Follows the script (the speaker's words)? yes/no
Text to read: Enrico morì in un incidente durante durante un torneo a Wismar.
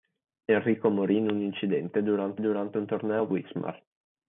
yes